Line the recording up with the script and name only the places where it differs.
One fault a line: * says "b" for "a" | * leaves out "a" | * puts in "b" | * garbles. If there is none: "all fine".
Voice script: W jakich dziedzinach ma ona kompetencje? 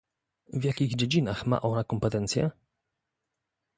all fine